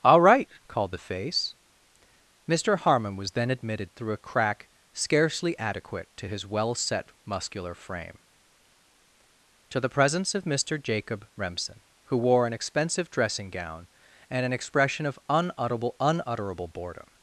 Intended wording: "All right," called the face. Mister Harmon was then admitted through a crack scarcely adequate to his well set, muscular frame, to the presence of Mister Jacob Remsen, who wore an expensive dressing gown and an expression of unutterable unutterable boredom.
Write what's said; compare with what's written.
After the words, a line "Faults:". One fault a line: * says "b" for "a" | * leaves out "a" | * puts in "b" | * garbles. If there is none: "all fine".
"All right," called the face. Mister Harmon was then admitted through a crack scarcely adequate to his well set, muscular frame, to the presence of Mister Jacob Remsen, who wore an expensive dressing gown and an expression of unutterable unutterable boredom.
Faults:
all fine